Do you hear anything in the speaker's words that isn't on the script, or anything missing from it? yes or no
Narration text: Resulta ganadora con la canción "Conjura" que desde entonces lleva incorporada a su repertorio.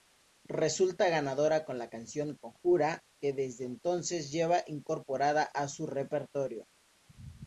no